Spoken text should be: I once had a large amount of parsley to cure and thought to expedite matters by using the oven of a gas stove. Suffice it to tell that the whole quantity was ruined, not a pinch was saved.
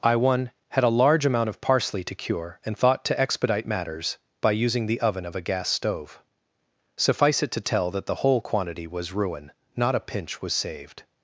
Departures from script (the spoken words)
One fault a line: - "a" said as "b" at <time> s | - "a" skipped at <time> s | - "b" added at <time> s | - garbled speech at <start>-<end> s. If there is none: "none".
- "once" said as "one" at 0.1 s
- "ruined" said as "ruin" at 9.1 s